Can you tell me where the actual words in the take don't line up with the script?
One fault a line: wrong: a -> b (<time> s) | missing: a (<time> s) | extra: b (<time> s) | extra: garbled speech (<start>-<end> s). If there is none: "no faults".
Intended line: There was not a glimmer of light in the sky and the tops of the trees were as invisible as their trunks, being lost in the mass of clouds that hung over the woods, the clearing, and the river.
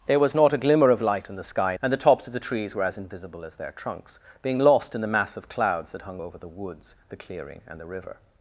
no faults